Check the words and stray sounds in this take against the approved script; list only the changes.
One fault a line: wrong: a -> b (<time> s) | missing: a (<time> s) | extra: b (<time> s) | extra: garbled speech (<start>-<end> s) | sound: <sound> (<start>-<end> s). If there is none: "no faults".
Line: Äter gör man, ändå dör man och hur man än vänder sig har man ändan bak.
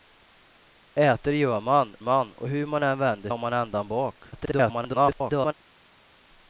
missing: ändå dör (1.9 s)
missing: sig (3.3 s)
extra: garbled speech (4.3-5.5 s)